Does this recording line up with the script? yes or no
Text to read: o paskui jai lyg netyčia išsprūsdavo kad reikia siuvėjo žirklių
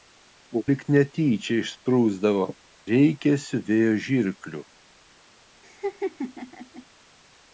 no